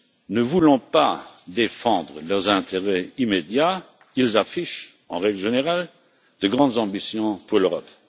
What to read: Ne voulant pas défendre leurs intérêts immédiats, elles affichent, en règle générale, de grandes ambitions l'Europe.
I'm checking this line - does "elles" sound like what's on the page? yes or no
no